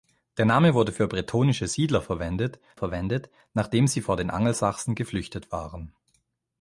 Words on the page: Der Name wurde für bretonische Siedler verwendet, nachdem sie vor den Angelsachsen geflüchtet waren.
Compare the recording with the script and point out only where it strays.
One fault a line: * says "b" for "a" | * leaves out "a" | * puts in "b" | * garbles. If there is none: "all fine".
* puts in "verwendet"